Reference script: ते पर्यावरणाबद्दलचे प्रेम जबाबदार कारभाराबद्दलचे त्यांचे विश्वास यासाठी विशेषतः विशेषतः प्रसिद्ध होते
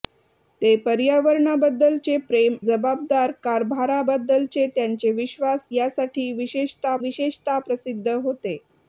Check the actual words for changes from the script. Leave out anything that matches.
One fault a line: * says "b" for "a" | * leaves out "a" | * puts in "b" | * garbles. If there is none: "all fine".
all fine